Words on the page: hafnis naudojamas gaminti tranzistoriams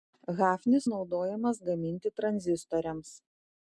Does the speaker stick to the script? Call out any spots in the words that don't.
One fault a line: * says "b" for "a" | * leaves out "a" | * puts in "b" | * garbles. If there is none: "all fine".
all fine